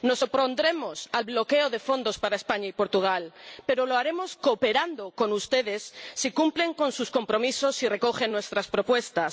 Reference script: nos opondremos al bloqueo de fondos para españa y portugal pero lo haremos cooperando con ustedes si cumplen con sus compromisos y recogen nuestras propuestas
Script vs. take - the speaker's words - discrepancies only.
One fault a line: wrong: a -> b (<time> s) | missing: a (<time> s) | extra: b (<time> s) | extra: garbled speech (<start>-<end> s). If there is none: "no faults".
no faults